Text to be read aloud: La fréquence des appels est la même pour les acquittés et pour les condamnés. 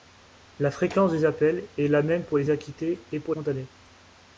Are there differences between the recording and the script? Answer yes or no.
yes